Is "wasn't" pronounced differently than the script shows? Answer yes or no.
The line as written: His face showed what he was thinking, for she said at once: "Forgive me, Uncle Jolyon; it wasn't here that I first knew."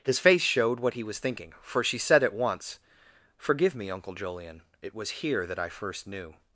yes